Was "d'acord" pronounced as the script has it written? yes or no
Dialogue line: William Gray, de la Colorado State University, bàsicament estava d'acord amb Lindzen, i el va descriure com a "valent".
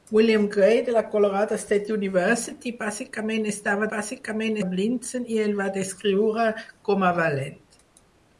no